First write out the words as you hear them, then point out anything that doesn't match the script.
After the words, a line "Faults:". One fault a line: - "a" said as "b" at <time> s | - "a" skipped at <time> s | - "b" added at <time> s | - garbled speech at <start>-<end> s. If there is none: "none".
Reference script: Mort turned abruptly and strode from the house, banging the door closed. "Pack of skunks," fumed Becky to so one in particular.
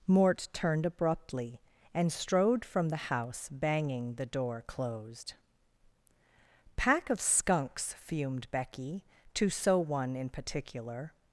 Mort turned abruptly and strode from the house, banging the door closed. "Pack of skunks," fumed Becky to so one in particular.
Faults:
none